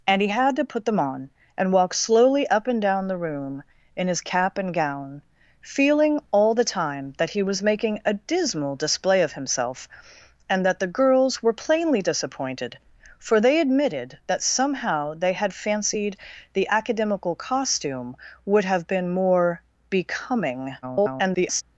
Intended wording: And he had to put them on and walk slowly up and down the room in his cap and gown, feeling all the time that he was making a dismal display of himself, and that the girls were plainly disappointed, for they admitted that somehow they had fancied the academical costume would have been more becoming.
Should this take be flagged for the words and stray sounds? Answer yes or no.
yes